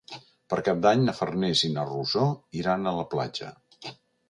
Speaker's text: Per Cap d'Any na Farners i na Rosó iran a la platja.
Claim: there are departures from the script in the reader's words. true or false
false